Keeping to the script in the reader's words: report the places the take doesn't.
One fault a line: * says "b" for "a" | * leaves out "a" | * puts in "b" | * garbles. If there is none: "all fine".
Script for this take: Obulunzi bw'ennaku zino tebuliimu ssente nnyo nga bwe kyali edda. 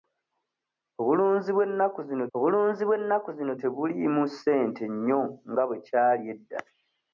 * puts in "obulunzi bw'ennaku zino"